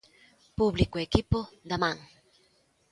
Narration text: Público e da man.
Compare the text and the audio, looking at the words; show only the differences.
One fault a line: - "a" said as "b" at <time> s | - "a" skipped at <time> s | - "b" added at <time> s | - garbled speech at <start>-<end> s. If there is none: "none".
- "equipo" added at 1.1 s